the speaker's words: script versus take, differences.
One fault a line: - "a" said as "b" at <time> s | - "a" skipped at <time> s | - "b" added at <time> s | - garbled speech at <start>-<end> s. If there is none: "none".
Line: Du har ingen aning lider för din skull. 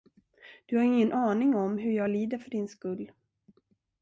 - "om hur jag" added at 1.6 s